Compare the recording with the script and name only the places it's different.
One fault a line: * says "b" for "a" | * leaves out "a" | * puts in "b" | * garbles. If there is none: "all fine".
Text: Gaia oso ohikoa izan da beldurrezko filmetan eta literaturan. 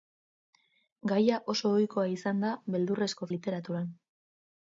* leaves out "filmetan eta"